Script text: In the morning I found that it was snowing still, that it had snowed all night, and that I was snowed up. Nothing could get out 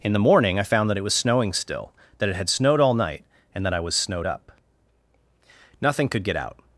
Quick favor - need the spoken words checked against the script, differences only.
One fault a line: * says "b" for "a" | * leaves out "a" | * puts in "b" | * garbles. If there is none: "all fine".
all fine